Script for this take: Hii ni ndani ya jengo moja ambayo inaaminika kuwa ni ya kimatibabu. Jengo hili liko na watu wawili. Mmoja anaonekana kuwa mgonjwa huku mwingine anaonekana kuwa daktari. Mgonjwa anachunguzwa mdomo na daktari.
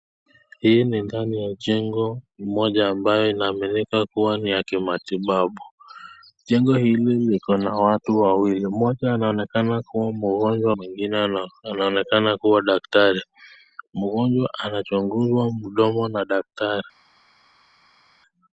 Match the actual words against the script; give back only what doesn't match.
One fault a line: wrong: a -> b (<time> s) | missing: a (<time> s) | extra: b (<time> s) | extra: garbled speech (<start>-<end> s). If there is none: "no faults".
missing: huku (10.7 s)